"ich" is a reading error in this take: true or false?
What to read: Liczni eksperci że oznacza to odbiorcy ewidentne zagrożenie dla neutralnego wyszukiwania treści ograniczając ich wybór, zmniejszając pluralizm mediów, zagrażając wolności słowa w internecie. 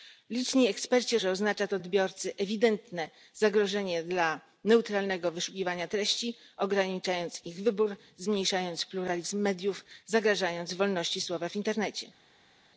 false